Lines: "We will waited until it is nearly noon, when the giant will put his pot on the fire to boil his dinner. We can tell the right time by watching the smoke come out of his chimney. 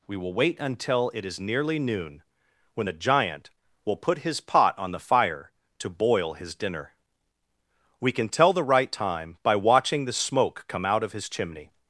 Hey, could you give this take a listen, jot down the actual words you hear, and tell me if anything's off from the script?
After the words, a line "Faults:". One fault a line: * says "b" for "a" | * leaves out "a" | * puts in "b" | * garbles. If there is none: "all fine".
"We will wait until it is nearly noon, when the giant will put his pot on the fire to boil his dinner. We can tell the right time by watching the smoke come out of his chimney.
Faults:
* says "wait" for "waited"